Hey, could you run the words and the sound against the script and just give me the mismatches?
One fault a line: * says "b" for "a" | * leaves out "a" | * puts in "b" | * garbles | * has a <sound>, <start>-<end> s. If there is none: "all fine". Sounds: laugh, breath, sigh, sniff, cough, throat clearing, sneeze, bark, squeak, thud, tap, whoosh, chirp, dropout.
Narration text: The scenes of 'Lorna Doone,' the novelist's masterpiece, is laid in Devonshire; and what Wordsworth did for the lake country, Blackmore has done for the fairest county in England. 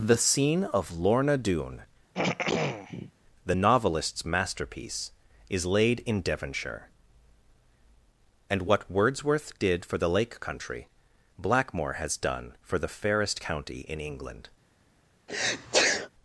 * says "scene" for "scenes"
* has a throat clearing, 2.1-3.1 s
* has a sneeze, 15.3-16.1 s